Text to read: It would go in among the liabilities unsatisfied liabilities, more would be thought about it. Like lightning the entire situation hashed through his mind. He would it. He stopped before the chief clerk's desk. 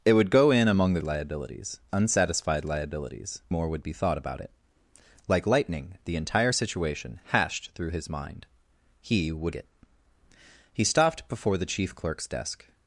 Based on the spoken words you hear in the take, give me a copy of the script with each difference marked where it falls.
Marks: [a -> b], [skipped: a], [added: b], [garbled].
It would go in among the liabilities unsatisfied liabilities, more would be thought about it. Like lightning the entire situation hashed through his mind. He would it. He stopped before the chief clerk's desk.